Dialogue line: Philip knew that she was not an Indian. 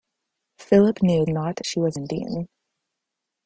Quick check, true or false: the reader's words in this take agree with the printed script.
false